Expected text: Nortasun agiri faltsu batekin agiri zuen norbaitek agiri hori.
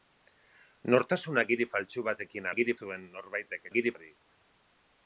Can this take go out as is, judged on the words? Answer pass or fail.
pass